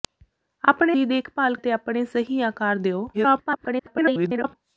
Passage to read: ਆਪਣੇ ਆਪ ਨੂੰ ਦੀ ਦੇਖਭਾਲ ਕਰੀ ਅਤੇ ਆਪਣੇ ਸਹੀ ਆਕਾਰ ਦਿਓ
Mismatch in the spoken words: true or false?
true